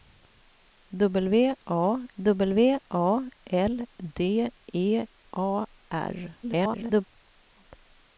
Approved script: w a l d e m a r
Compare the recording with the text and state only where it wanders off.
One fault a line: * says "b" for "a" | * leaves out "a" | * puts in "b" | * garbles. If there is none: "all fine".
* puts in "w a"
* leaves out "m"
* garbles